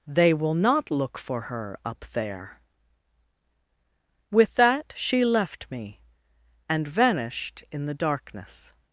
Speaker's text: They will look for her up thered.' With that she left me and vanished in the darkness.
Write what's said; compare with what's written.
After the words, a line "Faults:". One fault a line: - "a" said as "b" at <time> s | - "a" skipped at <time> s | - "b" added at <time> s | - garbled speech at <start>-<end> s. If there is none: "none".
They will not look for her up there.' With that she left me and vanished in the darkness.
Faults:
- "not" added at 0.6 s
- "thered" said as "there" at 2.1 s